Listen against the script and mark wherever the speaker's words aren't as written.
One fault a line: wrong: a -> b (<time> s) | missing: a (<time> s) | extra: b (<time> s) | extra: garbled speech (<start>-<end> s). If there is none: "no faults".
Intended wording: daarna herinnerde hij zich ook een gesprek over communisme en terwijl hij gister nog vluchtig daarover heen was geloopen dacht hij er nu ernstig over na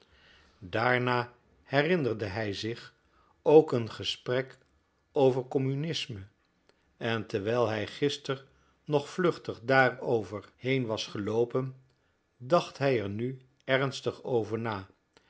no faults